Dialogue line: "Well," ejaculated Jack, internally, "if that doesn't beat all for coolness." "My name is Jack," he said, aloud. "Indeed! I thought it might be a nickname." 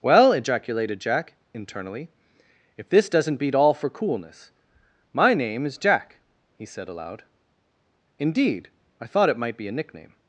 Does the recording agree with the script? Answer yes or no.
no